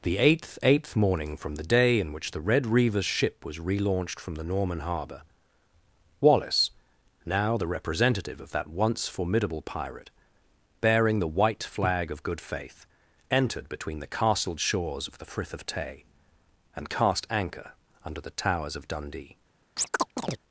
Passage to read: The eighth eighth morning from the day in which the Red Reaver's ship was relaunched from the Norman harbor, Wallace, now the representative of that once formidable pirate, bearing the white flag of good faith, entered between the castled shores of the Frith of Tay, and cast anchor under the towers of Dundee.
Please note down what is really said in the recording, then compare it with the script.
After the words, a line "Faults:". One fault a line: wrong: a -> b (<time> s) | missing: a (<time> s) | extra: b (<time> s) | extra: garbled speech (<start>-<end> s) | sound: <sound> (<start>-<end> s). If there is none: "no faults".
The eighth eighth morning from the day in which the Red Reaver's ship was relaunched from the Norman harbor, Wallace, now the representative of that once formidable pirate, bearing the white flag of good faith, entered between the castled shores of the Frith of Tay, and cast anchor under the towers of Dundee.
Faults:
sound: chirp (19.8-20.4 s)